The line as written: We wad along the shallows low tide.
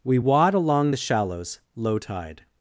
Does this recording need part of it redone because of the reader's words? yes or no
no